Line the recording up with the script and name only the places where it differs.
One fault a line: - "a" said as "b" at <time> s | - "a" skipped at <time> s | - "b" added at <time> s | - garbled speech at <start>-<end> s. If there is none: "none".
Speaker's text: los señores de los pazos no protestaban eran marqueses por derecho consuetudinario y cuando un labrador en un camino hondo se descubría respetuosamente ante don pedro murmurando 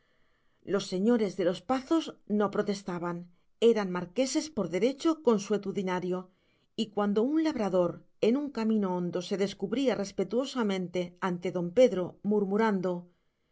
none